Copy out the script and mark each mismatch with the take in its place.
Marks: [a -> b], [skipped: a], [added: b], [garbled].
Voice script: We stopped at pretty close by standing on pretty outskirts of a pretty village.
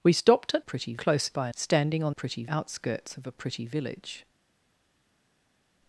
We stopped at pretty close by standing on pretty outskirts of a pretty village.